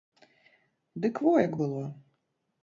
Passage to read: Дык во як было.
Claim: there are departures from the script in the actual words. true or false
false